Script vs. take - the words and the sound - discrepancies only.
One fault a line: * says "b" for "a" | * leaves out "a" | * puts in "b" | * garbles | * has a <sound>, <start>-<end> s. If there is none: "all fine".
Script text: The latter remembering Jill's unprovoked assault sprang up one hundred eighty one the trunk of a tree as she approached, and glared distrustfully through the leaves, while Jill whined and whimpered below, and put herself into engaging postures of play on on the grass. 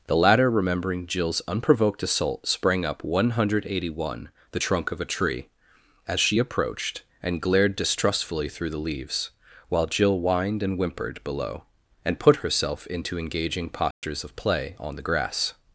* has a dropout, 13.9-14.0 s
* leaves out "on"